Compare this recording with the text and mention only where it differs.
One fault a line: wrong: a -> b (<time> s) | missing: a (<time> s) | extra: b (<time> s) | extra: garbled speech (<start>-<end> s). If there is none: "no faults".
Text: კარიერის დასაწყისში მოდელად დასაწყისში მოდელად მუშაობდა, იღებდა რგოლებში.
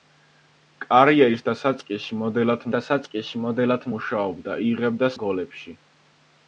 no faults